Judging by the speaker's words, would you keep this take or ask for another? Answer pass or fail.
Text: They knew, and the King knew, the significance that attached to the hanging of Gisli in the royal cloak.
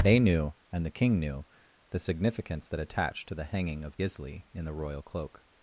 pass